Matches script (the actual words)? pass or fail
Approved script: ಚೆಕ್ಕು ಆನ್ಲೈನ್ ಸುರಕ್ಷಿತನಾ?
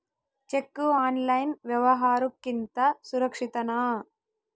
fail